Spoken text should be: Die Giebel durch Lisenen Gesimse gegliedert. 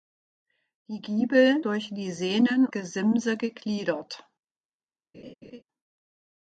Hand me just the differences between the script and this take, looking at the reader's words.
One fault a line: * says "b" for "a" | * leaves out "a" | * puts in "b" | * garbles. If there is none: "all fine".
all fine